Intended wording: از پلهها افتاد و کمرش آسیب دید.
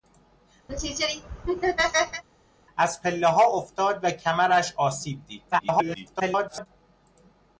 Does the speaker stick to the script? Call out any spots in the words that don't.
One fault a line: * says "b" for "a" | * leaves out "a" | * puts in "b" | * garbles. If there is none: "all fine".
* garbles